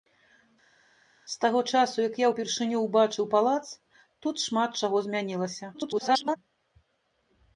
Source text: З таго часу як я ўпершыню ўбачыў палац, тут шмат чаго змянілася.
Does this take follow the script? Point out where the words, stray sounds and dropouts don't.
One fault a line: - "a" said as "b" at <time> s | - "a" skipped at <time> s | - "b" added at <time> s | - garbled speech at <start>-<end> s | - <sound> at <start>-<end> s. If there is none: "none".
- garbled speech at 5.7-6.4 s